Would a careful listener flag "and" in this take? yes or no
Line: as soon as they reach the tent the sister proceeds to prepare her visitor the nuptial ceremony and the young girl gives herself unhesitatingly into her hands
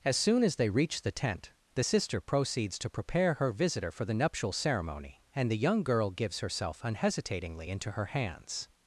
no